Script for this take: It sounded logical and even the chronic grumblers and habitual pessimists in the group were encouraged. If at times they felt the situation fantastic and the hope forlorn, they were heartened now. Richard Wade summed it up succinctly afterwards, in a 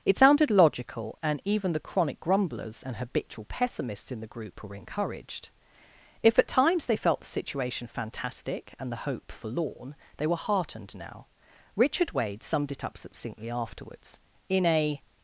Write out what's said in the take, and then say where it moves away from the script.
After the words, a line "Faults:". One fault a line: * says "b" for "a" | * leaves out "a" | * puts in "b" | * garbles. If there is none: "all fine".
It sounded logical and even the chronic grumblers and habitual pessimists in the group were encouraged. If at times they felt the situation fantastic and the hope forlorn, they were heartened now. Richard Wade summed it up succinctly afterwards, in a
Faults:
all fine